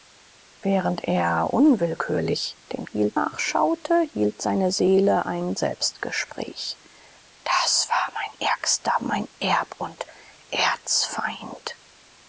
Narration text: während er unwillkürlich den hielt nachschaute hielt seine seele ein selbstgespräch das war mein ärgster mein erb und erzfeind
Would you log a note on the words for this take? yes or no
no